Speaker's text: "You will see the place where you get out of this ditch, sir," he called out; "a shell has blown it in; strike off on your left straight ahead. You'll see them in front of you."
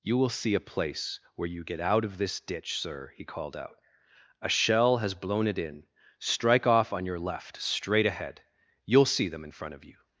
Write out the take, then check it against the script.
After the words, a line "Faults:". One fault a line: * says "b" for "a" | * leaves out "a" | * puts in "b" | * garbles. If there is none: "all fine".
"You will see a place where you get out of this ditch, sir," he called out; "a shell has blown it in; strike off on your left straight ahead. You'll see them in front of you."
Faults:
* says "a" for "the"